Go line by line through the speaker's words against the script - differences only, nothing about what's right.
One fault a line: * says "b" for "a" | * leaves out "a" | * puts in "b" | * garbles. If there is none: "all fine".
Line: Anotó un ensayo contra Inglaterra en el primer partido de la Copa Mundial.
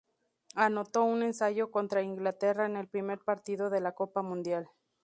all fine